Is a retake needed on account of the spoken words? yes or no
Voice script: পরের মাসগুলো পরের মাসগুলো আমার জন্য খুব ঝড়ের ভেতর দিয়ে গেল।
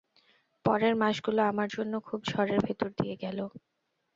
yes